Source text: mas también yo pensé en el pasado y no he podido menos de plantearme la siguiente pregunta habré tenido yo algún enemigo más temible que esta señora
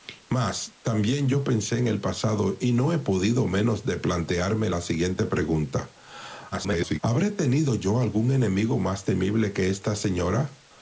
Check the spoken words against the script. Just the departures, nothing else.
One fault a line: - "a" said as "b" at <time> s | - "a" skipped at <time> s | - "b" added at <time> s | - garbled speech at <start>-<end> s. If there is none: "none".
- garbled speech at 6.5-7.0 s